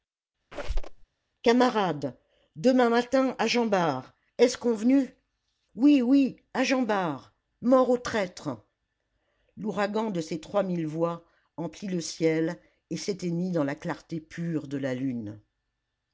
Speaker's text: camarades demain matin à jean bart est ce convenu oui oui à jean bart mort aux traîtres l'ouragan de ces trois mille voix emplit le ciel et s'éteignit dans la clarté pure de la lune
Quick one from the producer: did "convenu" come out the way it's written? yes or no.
yes